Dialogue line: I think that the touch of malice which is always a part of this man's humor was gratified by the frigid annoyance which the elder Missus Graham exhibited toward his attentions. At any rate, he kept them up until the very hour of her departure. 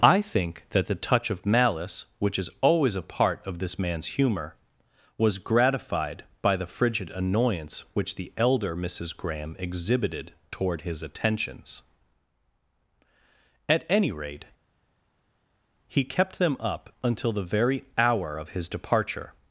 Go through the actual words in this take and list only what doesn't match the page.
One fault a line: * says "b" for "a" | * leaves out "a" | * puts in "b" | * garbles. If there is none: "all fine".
* says "his" for "her"